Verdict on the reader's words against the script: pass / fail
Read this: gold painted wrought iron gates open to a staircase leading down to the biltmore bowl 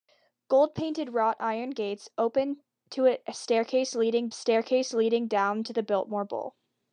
fail